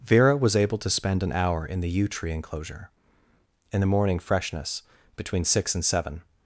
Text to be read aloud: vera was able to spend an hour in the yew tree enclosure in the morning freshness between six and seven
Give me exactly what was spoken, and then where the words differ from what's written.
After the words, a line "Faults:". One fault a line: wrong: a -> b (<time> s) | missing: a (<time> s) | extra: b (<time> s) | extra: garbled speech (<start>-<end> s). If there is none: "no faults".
vera was able to spend an hour in the yew tree enclosure in the morning freshness between six and seven
Faults:
no faults